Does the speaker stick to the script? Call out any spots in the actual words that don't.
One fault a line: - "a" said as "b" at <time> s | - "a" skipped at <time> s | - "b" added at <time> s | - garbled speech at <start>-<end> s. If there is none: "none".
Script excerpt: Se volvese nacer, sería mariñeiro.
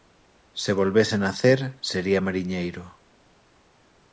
none